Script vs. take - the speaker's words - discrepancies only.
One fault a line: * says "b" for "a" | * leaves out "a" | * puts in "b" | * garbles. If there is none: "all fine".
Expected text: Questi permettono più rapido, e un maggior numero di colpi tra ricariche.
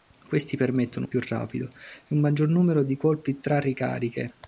all fine